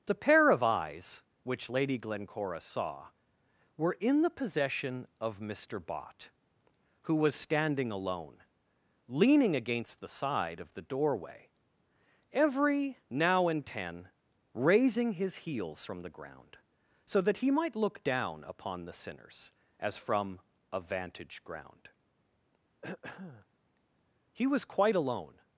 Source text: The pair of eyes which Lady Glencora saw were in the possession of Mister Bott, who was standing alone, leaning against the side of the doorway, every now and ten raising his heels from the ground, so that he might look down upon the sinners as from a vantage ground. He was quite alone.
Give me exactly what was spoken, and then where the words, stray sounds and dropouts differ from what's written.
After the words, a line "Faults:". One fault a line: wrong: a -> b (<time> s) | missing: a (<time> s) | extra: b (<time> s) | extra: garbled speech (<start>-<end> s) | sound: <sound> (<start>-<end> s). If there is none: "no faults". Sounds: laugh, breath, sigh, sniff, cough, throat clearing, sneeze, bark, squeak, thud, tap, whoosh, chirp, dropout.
The pair of eyes which Lady Glencora saw were in the possession of Mister Bott, who was standing alone, leaning against the side of the doorway, every now and ten raising his heels from the ground, so that he might look down upon the sinners as from a vantage ground. He was quite alone.
Faults:
sound: throat clearing (22.8-23.5 s)